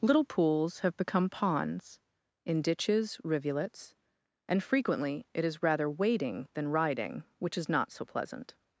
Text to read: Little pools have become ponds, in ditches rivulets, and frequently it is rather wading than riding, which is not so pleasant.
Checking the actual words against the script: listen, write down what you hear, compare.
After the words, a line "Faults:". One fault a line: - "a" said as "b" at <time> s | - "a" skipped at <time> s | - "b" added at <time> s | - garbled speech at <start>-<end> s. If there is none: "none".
Little pools have become ponds, in ditches rivulets, and frequently it is rather wading than riding, which is not so pleasant.
Faults:
none